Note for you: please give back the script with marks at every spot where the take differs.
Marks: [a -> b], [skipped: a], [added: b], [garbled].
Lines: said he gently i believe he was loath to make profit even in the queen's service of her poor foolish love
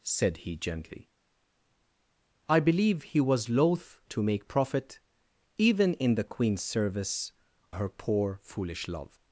said he gently i believe he was loath to make profit even in the queen's service [skipped: of] her poor foolish love